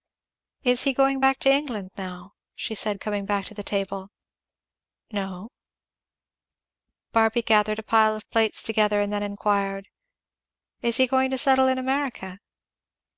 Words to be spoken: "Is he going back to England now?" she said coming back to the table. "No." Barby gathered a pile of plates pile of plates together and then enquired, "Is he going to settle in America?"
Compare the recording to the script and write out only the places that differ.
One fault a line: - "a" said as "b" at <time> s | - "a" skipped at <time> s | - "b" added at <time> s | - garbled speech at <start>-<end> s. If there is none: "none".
- "pile of plates" skipped at 8.6 s